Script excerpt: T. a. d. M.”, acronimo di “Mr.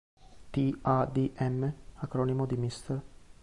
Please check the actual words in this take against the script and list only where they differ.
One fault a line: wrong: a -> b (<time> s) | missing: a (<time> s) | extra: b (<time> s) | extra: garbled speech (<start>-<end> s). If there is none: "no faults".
no faults